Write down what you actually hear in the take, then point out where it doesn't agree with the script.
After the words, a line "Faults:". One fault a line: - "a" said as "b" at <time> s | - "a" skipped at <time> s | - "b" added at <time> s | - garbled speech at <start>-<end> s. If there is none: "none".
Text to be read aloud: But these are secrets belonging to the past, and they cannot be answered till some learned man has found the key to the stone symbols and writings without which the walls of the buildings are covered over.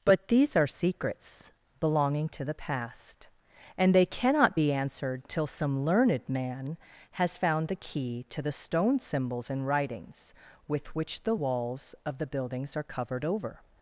But these are secrets belonging to the past, and they cannot be answered till some learned man has found the key to the stone symbols and writings with which the walls of the buildings are covered over.
Faults:
- "without" said as "with" at 10.7 s